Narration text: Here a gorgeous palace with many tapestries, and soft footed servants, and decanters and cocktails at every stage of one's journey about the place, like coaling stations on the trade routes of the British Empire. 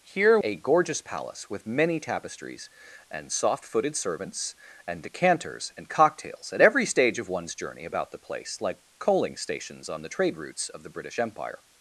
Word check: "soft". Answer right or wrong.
right